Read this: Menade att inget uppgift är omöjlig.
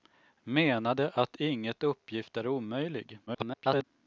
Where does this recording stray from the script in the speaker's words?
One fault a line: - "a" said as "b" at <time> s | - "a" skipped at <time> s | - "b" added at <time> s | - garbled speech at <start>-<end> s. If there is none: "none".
- garbled speech at 3.3-3.8 s